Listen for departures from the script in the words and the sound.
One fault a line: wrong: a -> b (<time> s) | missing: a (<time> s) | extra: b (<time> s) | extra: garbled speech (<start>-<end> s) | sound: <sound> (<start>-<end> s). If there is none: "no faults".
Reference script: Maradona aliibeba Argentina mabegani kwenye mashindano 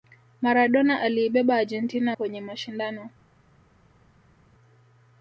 missing: mabegani (2.2 s)